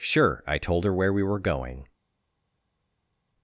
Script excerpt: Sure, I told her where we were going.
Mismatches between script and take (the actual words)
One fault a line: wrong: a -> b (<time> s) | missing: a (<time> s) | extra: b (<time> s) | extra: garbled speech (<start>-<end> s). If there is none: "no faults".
no faults